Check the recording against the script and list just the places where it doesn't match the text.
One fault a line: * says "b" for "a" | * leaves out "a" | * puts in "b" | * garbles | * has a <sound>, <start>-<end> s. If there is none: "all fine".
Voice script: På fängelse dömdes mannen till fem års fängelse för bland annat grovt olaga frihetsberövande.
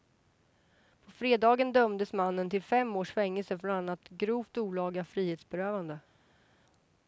* says "fredagen" for "fängelse"